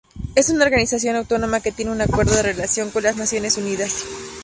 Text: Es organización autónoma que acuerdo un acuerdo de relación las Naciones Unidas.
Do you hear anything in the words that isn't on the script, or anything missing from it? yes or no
yes